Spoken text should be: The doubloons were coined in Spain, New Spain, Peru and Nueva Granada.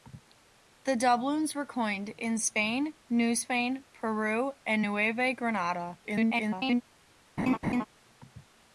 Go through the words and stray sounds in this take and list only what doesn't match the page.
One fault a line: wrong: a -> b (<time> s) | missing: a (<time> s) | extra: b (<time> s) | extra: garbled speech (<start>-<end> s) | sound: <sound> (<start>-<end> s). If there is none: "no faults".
extra: garbled speech (6.0-6.8 s)
sound: laugh (7.4-7.9 s)